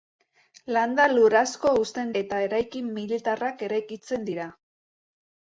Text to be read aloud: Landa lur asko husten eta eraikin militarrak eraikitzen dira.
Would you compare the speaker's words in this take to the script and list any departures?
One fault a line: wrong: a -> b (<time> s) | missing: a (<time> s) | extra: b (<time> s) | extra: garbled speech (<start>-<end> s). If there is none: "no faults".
no faults